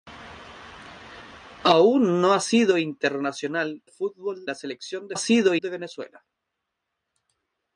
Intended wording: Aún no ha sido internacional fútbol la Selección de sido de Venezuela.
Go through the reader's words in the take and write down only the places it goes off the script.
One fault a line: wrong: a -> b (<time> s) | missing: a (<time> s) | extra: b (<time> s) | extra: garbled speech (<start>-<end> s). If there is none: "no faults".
no faults